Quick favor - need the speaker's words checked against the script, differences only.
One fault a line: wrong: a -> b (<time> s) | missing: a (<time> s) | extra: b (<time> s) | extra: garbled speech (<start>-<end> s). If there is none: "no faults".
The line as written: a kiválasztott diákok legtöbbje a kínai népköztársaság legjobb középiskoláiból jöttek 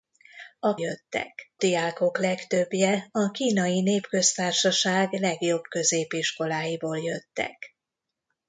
wrong: kiválasztott -> jöttek (0.7 s)